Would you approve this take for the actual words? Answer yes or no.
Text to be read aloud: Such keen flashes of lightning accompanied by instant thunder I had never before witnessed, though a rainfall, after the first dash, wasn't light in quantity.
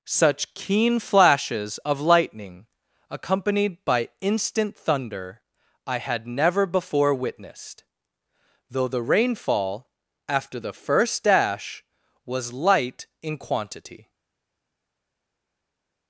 no